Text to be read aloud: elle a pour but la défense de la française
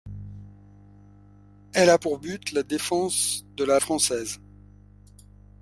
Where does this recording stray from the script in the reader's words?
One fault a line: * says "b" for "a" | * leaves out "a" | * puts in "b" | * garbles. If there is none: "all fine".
all fine